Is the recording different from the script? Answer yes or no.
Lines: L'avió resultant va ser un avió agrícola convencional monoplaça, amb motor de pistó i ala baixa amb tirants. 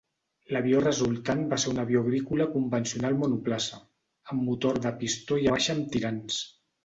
yes